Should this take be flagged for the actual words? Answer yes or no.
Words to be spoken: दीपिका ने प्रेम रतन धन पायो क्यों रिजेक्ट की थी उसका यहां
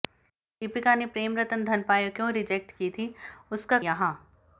no